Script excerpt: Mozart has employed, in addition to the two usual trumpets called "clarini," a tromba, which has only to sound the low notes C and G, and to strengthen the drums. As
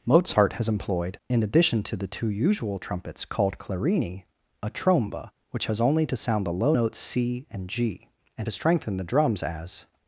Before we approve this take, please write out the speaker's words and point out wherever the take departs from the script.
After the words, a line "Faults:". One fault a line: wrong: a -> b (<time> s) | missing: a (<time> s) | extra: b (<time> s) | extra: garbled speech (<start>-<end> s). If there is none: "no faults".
Mozart has employed, in addition to the two usual trumpets called "clarini," a tromba, which has only to sound the low notes C and G, and to strengthen the drums. As
Faults:
no faults